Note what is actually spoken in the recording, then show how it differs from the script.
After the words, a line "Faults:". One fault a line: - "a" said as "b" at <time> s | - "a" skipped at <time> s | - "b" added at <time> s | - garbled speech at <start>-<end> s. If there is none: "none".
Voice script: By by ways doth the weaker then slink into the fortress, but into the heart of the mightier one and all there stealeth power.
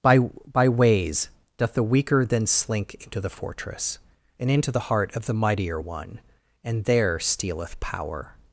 By by ways doth the weaker then slink into the fortress, and into the heart of the mightier one and there stealeth power.
Faults:
- "but" said as "and" at 4.4 s
- "all" skipped at 6.8 s